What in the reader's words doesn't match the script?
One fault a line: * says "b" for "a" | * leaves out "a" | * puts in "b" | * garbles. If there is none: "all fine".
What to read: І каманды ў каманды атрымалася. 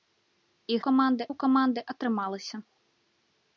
all fine